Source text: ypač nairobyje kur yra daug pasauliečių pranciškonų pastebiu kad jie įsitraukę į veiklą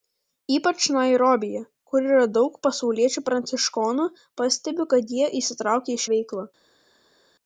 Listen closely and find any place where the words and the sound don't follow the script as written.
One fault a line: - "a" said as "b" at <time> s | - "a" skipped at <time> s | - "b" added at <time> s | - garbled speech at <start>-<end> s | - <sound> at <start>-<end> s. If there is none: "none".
none